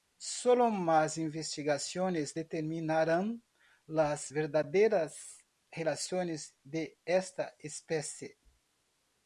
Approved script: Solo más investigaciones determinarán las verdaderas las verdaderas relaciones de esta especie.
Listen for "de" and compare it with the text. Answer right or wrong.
right